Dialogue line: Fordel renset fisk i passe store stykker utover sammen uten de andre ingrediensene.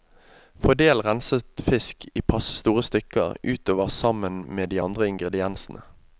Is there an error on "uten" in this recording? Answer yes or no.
yes